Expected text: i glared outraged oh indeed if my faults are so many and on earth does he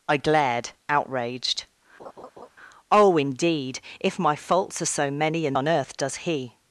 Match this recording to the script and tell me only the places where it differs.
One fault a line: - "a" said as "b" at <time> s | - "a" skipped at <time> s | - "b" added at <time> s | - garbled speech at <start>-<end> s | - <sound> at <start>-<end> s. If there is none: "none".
- laugh at 2.0-2.5 s